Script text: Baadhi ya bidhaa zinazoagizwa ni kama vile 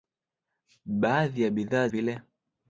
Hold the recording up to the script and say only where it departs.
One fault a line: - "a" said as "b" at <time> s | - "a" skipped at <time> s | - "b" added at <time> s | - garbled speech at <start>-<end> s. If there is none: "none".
- "zinazoagizwa ni kama" skipped at 1.9 s